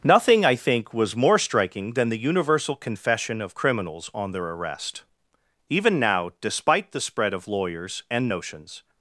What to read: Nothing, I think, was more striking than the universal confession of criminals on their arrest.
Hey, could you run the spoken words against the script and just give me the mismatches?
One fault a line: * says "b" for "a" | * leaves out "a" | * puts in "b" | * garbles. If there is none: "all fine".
* puts in "Even now despite the spread of lawyers and notions"